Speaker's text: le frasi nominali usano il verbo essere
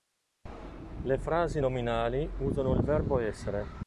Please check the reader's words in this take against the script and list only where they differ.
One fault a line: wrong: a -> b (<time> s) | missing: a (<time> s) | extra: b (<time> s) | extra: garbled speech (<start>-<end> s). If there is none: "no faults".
no faults